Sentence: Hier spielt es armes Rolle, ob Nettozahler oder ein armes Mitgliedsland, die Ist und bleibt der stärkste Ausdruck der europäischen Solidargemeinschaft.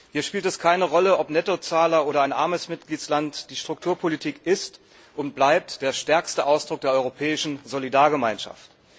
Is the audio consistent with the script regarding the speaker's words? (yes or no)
no